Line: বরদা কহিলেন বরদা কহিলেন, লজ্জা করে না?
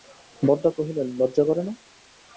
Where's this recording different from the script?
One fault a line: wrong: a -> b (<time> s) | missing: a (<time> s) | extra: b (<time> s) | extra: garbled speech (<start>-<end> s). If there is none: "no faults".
missing: বরদা কহিলেন (1.1 s)